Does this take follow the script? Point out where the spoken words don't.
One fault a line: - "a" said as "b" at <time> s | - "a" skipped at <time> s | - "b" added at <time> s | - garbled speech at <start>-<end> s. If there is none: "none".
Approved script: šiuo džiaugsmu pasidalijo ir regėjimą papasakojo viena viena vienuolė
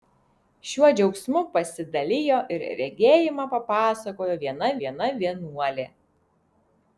none